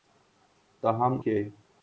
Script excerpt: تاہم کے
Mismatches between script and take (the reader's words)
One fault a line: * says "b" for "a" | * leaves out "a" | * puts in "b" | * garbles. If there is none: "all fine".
all fine